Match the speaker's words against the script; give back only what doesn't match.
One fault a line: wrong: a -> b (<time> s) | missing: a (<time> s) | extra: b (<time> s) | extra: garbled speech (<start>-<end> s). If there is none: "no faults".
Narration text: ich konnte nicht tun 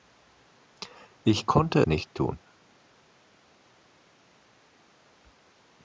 no faults